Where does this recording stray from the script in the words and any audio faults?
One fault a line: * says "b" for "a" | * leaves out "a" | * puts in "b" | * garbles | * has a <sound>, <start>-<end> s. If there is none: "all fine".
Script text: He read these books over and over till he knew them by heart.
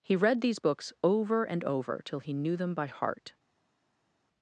all fine